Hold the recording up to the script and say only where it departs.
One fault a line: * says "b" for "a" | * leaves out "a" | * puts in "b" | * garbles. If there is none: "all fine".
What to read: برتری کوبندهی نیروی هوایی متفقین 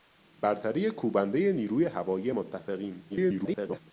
* garbles